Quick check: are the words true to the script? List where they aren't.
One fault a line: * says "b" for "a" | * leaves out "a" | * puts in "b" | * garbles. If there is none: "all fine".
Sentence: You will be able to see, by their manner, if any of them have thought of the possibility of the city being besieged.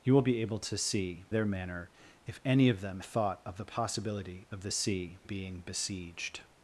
* leaves out "by"
* leaves out "have"
* says "see" for "city"